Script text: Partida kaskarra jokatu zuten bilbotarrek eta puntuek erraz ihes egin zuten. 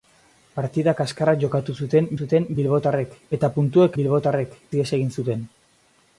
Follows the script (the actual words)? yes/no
no